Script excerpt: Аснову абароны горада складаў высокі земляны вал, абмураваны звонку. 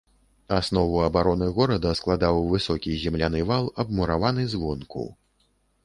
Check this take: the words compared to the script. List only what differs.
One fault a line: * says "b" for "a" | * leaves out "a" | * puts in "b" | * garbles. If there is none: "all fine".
all fine